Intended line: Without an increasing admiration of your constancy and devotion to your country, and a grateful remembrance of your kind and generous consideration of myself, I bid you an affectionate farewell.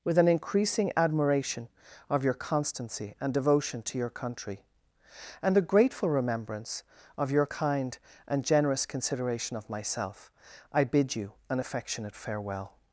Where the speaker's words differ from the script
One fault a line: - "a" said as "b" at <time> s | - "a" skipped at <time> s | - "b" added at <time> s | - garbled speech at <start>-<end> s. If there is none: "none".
- "Without" said as "With" at 0.0 s